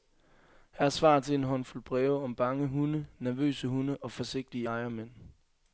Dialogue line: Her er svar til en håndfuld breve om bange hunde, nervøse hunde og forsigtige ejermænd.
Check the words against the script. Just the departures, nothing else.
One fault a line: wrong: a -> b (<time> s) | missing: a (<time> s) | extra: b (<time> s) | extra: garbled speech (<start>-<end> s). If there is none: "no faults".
no faults